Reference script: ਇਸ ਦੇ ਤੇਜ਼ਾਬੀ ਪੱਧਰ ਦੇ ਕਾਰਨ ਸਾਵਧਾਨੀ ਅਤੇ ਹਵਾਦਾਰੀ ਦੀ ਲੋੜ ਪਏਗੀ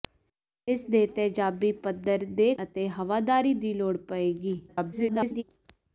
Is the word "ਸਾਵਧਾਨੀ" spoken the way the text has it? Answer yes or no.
no